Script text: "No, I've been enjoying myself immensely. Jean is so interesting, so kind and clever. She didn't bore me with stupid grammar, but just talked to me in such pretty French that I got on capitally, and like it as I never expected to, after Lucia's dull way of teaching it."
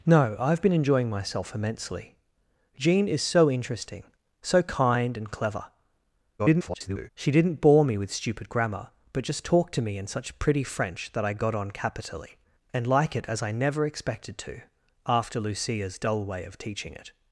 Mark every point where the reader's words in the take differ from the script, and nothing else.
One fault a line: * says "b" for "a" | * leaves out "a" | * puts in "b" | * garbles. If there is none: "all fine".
* garbles